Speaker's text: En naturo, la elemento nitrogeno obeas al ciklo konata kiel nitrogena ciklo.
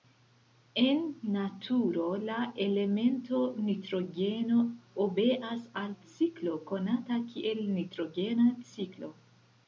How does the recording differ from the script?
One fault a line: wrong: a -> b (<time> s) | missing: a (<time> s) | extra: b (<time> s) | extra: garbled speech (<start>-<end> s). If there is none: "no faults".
no faults